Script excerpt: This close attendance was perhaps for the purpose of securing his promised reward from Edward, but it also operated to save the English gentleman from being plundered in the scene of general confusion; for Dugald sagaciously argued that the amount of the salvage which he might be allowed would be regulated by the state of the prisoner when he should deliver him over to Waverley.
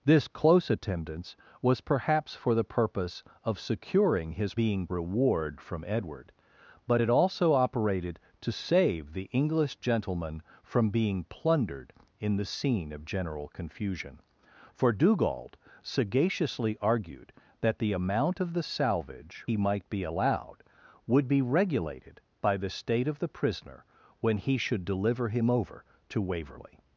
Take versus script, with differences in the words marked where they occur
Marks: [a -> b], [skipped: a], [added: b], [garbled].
This close attendance was perhaps for the purpose of securing his [promised -> being] reward from Edward, but it also operated to save the English gentleman from being plundered in the scene of general confusion; for Dugald sagaciously argued that the amount of the salvage [skipped: which] he might be allowed would be regulated by the state of the prisoner when he should deliver him over to Waverley.